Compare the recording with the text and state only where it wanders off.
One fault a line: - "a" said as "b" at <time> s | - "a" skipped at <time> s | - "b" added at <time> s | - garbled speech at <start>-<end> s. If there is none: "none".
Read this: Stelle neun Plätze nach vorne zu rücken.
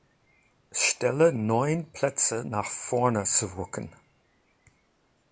none